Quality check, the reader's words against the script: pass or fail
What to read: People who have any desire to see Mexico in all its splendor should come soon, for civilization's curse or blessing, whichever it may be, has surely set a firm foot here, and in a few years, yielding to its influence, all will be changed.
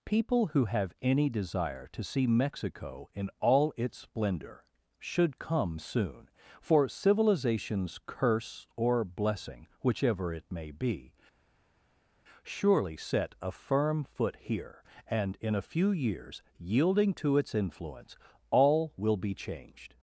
fail